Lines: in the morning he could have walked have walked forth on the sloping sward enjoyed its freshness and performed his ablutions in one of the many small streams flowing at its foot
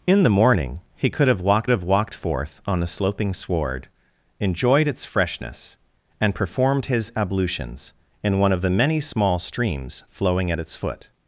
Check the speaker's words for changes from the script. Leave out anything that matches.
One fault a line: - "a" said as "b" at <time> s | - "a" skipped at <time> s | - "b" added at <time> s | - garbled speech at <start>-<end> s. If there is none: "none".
none